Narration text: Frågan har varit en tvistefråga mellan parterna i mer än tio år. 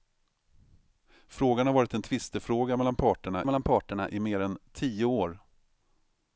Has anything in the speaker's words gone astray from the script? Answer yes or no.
yes